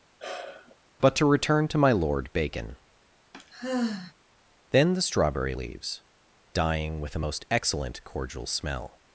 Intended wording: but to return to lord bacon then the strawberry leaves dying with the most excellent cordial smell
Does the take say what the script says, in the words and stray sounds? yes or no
no